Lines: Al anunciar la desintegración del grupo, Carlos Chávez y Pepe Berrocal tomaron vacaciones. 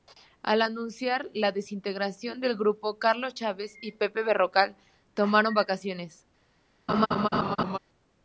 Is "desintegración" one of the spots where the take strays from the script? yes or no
no